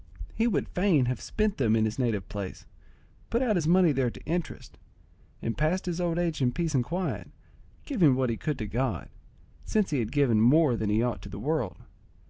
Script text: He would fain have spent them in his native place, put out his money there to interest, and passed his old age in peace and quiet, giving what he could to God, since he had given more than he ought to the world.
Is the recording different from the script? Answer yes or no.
no